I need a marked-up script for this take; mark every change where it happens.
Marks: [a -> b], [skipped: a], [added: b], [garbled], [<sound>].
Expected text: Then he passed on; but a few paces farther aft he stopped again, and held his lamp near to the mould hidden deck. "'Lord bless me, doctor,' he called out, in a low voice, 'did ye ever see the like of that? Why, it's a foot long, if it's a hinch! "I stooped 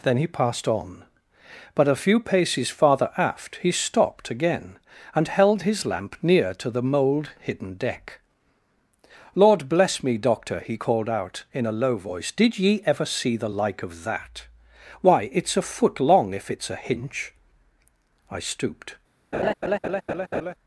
Then he passed on; but a few paces farther aft he stopped again, and held his lamp near to the mould hidden deck. "'Lord bless me, doctor,' he called out, in a low voice, 'did ye ever see the like of that? Why, it's a foot long, if it's a hinch! "I stooped [laugh]